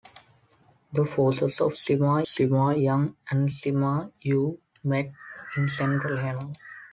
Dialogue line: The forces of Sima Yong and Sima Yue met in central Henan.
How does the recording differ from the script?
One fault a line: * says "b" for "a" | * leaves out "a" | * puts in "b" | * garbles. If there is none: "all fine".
* puts in "Sima"